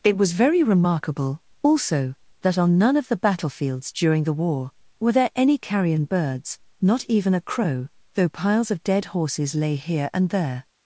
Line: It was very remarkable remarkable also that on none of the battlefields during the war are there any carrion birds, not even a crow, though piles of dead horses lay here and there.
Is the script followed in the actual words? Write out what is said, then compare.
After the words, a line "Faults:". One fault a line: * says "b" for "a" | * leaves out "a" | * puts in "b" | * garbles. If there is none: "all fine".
It was very remarkable also that on none of the battlefields during the war were there any carrion birds, not even a crow, though piles of dead horses lay here and there.
Faults:
* leaves out "remarkable"
* says "were" for "are"